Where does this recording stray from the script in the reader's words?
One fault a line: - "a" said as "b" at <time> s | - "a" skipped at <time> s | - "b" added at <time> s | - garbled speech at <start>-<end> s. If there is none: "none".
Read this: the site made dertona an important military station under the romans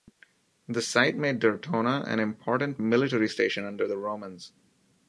none